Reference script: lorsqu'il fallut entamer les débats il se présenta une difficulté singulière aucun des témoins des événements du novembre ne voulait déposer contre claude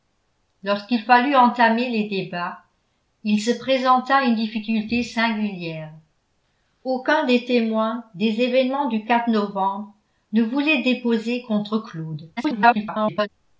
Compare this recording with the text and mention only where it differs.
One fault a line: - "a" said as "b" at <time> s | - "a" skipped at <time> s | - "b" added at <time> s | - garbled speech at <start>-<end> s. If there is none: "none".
- garbled speech at 12.4-13.3 s